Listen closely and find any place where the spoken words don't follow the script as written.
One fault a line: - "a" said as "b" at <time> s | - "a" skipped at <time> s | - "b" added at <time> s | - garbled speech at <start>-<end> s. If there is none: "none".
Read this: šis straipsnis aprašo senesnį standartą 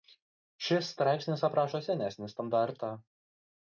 none